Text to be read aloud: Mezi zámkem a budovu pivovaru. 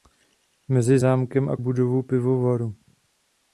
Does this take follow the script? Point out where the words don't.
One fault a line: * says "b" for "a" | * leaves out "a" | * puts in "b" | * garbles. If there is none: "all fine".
all fine